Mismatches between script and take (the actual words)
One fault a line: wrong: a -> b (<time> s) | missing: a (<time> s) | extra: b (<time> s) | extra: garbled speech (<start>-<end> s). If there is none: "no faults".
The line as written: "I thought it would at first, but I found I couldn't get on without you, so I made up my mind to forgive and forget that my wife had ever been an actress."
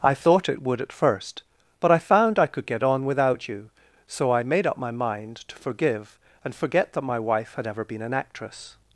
wrong: couldn't -> could (2.5 s)